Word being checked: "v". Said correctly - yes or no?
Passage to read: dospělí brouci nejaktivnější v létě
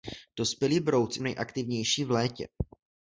yes